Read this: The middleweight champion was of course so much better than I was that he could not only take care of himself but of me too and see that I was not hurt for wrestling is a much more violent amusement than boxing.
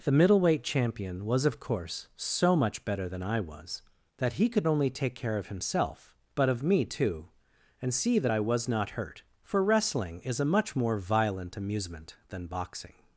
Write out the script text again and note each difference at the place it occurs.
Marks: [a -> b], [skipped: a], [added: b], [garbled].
The middleweight champion was of course so much better than I was that he could [skipped: not] only take care of himself but of me too and see that I was not hurt for wrestling is a much more violent amusement than boxing.